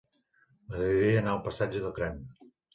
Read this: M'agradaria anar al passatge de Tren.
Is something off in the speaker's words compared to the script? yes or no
no